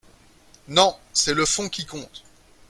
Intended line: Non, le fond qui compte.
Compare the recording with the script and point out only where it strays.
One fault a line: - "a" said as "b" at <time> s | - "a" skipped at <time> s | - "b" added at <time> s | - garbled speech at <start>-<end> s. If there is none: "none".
- "c'est" added at 1.1 s